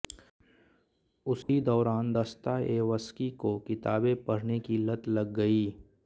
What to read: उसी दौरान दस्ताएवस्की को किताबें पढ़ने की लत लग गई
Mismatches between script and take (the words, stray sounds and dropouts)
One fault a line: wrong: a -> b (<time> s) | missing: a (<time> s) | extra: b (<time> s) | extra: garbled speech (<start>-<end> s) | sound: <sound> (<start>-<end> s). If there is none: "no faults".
sound: dropout (1.4-1.5 s)